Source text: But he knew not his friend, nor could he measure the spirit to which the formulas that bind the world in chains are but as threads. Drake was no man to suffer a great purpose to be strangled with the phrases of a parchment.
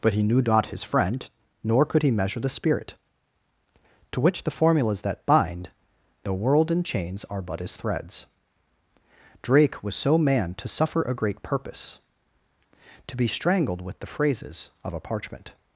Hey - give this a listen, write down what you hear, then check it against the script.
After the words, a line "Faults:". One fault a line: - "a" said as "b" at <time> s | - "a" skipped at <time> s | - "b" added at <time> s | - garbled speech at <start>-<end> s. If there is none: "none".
But he knew not his friend, nor could he measure the spirit to which the formulas that bind the world in chains are but as threads. Drake was so man to suffer a great purpose to be strangled with the phrases of a parchment.
Faults:
- "no" said as "so" at 9.9 s